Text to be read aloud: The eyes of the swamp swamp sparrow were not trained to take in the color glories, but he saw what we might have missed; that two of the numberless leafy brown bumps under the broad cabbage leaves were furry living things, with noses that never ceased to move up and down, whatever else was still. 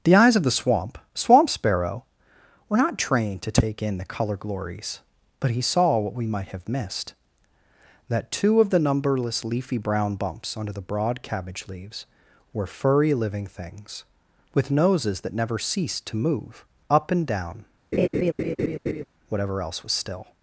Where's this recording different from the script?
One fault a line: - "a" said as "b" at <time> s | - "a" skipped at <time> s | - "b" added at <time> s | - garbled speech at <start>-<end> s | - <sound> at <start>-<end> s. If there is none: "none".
- laugh at 17.9-19.0 s